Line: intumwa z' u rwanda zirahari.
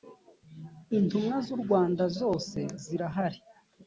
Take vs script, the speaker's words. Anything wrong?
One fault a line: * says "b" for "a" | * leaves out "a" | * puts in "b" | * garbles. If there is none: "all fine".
* puts in "zose"